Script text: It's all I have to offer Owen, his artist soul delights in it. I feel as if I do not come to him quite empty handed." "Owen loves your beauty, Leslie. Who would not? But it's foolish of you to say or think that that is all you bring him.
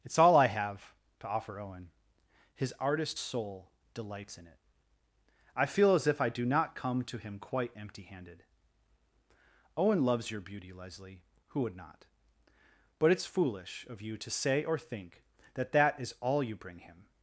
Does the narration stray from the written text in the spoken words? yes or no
no